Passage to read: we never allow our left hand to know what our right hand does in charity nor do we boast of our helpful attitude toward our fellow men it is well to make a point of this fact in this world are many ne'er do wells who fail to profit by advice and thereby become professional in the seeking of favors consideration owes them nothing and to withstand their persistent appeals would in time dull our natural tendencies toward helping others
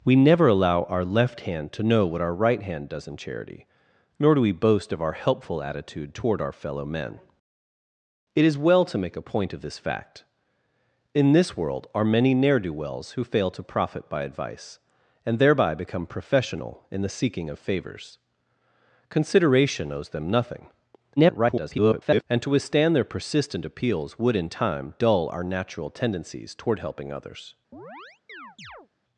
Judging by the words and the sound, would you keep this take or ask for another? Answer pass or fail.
fail